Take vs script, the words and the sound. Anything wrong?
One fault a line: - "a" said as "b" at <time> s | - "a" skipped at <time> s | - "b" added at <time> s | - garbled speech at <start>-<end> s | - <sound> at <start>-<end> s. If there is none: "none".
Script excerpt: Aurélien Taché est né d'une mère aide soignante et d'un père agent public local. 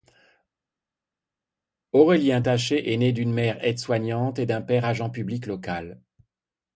none